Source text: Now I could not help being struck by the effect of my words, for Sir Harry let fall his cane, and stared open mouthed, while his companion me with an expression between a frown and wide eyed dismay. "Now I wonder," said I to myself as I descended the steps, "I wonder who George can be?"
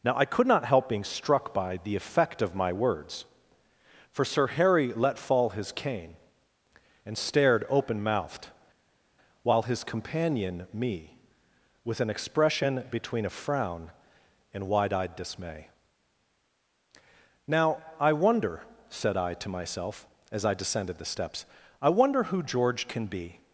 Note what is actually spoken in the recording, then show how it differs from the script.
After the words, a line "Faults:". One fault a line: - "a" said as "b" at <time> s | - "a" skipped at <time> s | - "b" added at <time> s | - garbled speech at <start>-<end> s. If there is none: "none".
Now I could not help being struck by the effect of my words, for Sir Harry let fall his cane, and stared open mouthed, while his companion me with an expression between a frown and wide eyed dismay. "Now I wonder," said I to myself as I descended the steps, "I wonder who George can be?"
Faults:
none